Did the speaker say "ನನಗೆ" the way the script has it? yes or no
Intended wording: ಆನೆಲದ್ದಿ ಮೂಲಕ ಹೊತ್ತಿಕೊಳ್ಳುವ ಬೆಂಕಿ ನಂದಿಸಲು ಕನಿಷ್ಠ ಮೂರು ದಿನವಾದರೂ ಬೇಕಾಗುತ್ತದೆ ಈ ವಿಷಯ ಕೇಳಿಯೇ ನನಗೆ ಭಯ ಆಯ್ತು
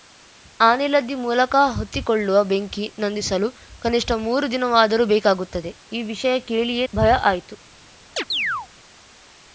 no